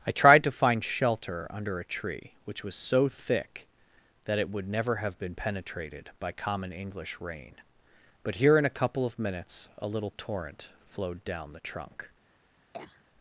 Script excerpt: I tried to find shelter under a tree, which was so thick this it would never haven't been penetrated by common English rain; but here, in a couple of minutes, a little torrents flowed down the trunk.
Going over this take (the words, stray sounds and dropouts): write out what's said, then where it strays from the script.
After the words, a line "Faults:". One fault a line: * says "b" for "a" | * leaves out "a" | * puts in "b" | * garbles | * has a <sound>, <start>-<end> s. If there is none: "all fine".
I tried to find shelter under a tree, which was so thick that it would never have been penetrated by common English rain; but here, in a couple of minutes, a little torrent flowed down the trunk.
Faults:
* says "that" for "this"
* says "have" for "haven't"
* says "torrent" for "torrents"
* has a cough, 12.7-13.0 s